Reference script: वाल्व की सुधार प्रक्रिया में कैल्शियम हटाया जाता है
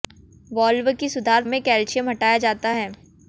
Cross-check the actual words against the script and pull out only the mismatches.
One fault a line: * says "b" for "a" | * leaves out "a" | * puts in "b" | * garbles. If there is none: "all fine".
* leaves out "प्रक्रिया"